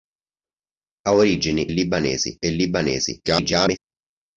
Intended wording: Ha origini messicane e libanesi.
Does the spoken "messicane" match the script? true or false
false